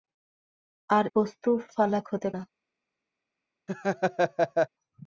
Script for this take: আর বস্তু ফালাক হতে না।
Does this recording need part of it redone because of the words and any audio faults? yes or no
yes